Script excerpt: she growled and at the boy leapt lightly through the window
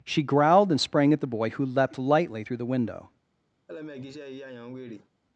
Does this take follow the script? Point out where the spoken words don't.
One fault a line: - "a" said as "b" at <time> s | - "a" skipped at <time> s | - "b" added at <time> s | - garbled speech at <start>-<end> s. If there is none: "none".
- "sprang" added at 0.8 s
- "who" added at 1.5 s